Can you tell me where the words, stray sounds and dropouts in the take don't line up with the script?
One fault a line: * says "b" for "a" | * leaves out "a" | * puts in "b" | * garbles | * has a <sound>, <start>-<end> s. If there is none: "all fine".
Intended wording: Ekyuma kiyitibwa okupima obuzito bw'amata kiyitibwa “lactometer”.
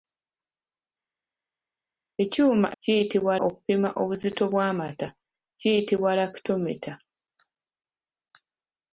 all fine